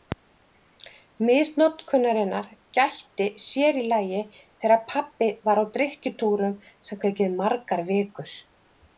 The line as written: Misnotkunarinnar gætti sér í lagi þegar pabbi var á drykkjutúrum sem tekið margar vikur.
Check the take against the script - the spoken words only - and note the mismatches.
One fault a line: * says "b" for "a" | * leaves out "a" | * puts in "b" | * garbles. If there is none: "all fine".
all fine